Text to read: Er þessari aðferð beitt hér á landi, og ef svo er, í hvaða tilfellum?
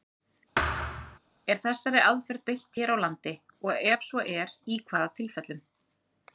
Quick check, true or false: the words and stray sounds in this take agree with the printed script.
false